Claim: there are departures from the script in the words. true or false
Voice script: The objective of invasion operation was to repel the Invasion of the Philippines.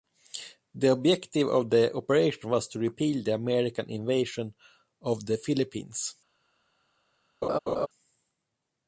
true